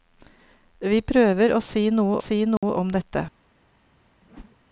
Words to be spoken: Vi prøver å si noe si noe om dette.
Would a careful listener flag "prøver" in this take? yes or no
no